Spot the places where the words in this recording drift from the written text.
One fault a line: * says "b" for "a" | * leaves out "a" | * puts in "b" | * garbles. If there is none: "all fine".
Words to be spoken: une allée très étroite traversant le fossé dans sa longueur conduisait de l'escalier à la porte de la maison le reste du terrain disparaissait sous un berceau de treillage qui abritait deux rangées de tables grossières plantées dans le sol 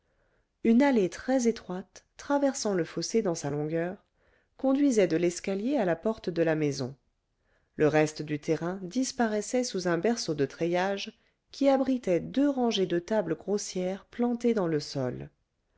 all fine